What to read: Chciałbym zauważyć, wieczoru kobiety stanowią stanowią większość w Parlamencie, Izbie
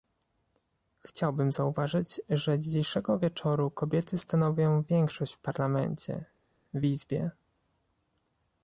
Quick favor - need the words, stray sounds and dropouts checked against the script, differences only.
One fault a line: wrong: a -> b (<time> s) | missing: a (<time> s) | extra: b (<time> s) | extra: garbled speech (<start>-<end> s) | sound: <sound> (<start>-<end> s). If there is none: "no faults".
extra: że dzisiejszego (2.3 s)
missing: stanowią (4.8 s)
extra: w (6.7 s)